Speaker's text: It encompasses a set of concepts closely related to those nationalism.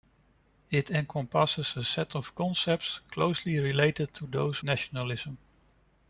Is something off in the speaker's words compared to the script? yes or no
no